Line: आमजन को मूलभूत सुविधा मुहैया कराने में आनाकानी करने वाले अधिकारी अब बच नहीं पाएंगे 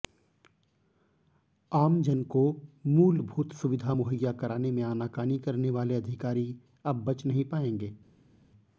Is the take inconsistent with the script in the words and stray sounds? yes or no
no